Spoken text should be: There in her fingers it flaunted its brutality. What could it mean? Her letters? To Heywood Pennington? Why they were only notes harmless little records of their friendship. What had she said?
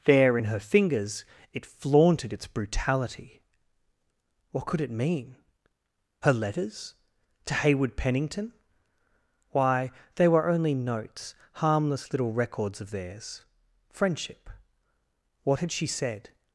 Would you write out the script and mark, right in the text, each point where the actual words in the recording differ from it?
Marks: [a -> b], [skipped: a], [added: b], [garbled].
There in her fingers it flaunted its brutality. What could it mean? Her letters? To Heywood Pennington? Why they were only notes harmless little records of [their -> theirs] friendship. What had she said?